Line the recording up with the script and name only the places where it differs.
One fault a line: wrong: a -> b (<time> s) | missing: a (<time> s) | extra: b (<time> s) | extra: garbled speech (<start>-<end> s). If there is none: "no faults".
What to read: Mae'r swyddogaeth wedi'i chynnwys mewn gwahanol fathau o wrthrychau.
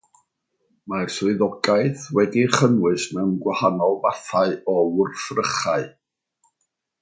no faults